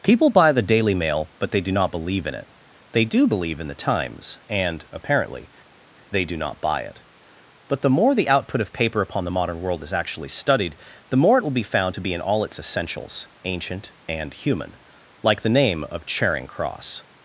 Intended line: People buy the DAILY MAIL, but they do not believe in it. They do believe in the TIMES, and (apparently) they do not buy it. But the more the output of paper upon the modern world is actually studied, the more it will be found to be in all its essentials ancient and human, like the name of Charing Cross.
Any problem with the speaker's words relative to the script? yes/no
no